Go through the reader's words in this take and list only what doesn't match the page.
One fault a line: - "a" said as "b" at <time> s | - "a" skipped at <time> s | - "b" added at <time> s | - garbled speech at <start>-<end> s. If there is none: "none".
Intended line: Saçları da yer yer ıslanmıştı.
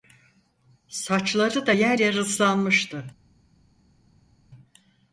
none